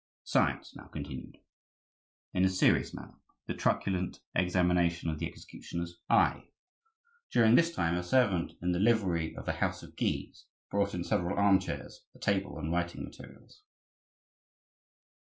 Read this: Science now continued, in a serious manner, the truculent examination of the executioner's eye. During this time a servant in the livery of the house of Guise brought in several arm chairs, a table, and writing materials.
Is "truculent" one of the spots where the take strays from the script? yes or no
no